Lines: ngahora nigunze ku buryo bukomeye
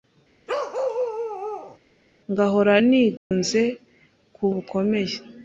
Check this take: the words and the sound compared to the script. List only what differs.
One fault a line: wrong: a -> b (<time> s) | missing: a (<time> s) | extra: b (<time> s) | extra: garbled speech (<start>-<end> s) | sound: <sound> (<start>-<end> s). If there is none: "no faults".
sound: bark (0.5-1.8 s)
sound: dropout (3.2-3.3 s)
missing: buryo (4.4 s)